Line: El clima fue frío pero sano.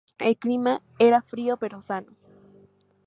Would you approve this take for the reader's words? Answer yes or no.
no